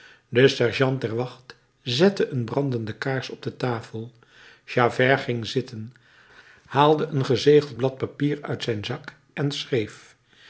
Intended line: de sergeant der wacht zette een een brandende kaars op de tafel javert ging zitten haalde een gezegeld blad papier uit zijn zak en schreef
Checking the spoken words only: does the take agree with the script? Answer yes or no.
no